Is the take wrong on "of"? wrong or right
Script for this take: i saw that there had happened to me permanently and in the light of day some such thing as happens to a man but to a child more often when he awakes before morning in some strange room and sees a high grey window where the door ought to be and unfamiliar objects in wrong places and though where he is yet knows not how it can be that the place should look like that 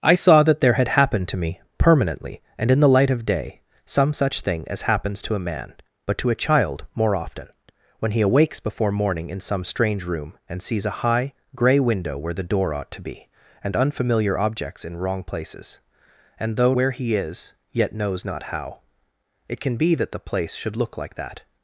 right